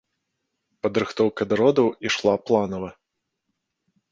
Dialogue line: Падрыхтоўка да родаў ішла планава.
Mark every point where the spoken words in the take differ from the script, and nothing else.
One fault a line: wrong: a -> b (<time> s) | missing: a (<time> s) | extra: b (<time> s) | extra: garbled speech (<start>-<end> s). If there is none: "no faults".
no faults